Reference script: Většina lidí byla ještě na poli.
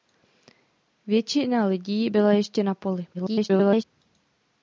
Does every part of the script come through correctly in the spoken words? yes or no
no